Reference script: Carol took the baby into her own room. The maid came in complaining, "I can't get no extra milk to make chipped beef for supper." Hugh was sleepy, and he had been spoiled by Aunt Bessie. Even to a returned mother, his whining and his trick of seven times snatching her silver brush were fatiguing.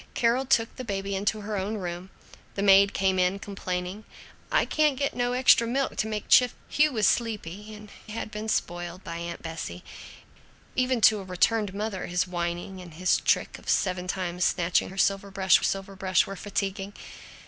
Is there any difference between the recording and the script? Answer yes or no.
yes